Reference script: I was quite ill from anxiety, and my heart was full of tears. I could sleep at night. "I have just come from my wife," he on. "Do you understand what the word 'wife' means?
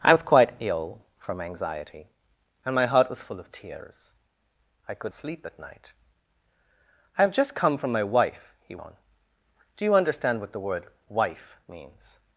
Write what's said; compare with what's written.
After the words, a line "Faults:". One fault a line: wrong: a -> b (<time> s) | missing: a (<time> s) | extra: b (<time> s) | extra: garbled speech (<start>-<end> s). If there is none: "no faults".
I was quite ill from anxiety, and my heart was full of tears. I could sleep at night. "I have just come from my wife," he on. "Do you understand what the word 'wife' means?
Faults:
no faults